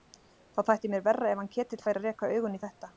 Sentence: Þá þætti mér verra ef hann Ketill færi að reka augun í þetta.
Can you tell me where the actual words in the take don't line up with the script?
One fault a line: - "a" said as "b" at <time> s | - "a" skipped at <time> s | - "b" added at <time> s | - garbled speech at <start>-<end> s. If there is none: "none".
none